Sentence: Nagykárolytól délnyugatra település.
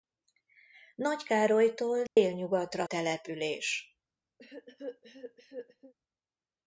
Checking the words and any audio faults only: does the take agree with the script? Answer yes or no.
no